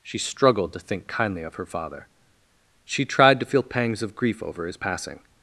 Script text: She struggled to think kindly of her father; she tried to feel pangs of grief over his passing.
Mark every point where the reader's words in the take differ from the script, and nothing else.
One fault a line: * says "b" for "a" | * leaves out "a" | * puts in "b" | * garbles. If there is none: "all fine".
all fine